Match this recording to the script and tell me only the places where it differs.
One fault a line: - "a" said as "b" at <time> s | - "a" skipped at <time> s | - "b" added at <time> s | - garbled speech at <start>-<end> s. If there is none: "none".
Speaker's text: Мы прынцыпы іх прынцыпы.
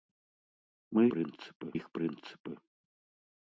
none